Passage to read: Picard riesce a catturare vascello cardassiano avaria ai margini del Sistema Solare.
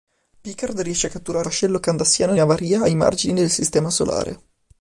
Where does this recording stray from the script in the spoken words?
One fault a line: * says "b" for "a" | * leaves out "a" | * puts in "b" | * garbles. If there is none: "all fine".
all fine